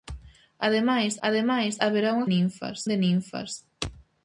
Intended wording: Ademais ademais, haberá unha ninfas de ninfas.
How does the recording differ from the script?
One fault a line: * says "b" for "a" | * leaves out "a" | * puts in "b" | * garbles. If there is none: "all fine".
all fine